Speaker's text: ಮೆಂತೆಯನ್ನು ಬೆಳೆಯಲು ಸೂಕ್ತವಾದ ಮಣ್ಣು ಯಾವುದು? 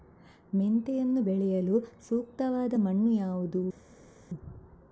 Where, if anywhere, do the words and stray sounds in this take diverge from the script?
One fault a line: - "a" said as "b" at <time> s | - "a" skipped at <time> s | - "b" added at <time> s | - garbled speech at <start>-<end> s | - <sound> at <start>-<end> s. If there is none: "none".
none